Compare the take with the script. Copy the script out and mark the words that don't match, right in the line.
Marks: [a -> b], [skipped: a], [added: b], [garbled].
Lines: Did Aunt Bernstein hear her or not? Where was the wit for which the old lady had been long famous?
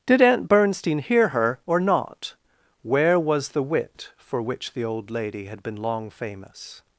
Did Aunt Bernstein hear her or not? Where was the wit for which the old lady had been long famous?